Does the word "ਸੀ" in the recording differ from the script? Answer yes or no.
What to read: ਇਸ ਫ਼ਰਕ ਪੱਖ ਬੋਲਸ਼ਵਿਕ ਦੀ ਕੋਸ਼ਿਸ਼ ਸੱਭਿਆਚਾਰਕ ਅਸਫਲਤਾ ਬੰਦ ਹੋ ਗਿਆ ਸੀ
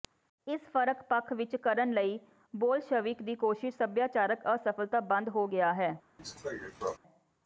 yes